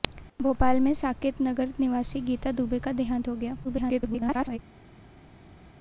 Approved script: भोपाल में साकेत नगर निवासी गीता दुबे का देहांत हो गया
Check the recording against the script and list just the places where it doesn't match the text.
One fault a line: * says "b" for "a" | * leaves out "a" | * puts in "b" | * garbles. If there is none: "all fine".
* garbles